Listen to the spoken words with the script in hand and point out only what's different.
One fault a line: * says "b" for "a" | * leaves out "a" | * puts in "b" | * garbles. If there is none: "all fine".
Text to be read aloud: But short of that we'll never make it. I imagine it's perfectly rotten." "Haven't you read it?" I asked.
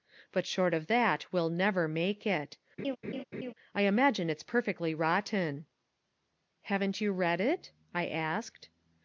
all fine